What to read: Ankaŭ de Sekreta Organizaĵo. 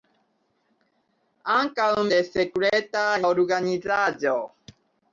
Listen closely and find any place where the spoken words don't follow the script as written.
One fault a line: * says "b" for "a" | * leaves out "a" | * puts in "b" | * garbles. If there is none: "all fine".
all fine